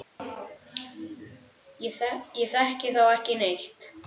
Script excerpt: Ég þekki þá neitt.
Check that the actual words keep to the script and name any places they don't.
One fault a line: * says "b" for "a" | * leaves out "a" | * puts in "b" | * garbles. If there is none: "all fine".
* puts in "ekki"